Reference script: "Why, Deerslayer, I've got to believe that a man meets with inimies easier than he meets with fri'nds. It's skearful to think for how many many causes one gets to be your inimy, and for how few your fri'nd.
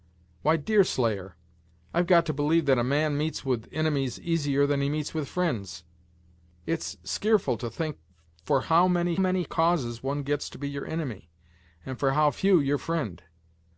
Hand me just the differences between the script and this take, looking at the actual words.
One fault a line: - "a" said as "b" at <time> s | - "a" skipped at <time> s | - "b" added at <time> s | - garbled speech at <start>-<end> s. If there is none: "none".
none